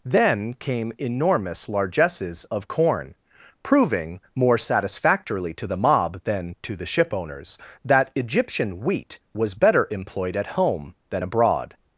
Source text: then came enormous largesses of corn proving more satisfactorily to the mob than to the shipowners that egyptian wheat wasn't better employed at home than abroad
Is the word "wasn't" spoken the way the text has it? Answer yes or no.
no